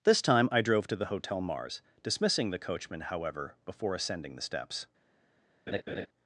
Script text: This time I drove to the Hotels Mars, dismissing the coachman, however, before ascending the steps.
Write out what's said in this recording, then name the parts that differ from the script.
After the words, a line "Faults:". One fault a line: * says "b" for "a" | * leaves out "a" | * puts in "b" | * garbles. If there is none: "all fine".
This time I drove to the Hotel Mars, dismissing the coachman, however, before ascending the steps.
Faults:
* says "Hotel" for "Hotels"